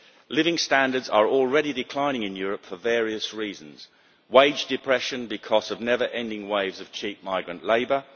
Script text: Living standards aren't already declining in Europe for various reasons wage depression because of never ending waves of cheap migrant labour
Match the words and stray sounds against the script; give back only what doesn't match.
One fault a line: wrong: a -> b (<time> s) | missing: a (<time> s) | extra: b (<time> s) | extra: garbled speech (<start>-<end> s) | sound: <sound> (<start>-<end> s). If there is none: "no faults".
wrong: aren't -> are (1.1 s)